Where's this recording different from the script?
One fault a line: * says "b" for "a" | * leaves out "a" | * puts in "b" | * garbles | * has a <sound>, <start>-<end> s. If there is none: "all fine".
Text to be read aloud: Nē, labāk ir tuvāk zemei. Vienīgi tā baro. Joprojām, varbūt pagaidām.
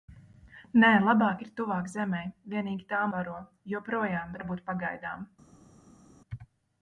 all fine